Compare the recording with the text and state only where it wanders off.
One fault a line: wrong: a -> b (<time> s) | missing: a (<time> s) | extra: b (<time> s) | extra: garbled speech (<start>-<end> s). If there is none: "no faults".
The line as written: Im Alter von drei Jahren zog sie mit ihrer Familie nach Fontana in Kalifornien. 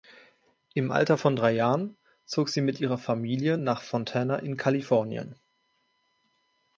no faults